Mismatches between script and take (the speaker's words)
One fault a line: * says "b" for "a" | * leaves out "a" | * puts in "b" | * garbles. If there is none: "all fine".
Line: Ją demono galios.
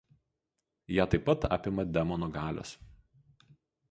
* puts in "taip pat apima"